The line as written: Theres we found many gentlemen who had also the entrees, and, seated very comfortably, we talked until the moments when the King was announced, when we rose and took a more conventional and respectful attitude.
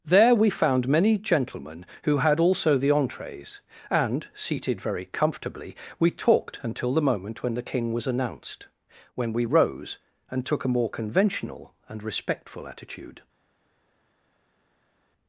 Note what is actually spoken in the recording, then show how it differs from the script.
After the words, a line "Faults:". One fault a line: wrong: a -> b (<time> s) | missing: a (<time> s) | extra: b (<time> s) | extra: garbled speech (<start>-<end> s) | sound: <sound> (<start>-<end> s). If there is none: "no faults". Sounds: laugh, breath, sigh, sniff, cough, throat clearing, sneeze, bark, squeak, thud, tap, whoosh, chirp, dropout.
There we found many gentlemen who had also the entrees, and, seated very comfortably, we talked until the moment when the King was announced, when we rose and took a more conventional and respectful attitude.
Faults:
wrong: Theres -> There (0.0 s)
wrong: moments -> moment (7.1 s)